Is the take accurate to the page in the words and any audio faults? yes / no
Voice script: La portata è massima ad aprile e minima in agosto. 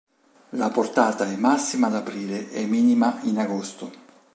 yes